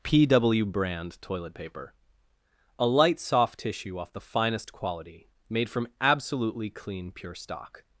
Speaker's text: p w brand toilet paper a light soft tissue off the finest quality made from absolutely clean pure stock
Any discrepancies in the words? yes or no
no